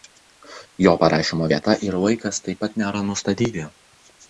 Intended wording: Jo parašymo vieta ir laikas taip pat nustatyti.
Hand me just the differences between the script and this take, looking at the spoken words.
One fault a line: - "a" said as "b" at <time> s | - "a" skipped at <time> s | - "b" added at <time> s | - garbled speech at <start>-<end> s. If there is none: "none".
- "nėra" added at 2.8 s